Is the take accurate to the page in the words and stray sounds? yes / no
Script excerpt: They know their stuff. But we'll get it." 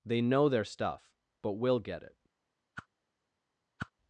no